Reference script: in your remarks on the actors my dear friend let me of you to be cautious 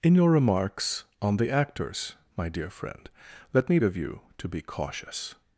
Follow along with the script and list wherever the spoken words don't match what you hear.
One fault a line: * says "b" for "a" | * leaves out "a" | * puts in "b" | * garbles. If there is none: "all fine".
all fine